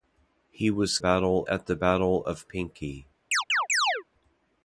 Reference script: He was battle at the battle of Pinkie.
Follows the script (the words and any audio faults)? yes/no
no